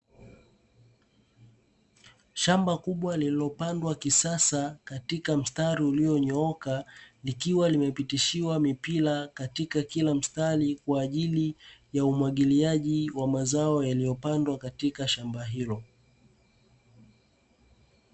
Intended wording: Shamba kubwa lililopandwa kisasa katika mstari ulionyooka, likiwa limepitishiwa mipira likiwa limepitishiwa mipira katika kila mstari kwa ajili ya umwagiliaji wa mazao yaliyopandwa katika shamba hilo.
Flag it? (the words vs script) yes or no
yes